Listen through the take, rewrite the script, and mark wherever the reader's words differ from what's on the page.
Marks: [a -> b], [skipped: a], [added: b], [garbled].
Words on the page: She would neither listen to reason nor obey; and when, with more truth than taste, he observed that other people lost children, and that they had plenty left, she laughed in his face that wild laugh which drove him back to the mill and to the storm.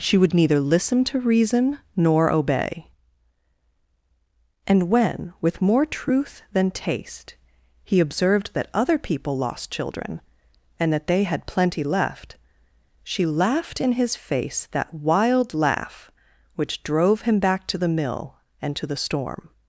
She would neither listen to reason nor obey; and when, with more truth than taste, he observed that other people lost children, and that they had plenty left, she laughed in his face that wild laugh which drove him back to the mill and to the storm.